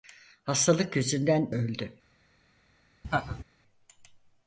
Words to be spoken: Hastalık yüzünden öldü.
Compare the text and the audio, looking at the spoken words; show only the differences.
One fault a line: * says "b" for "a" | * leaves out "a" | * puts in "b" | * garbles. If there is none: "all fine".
all fine